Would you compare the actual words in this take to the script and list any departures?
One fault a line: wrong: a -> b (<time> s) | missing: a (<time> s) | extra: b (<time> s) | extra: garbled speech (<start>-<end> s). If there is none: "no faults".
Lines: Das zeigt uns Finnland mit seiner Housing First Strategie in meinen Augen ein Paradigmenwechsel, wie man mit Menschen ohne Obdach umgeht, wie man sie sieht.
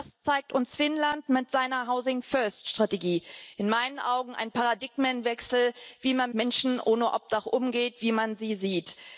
missing: mit (6.3 s)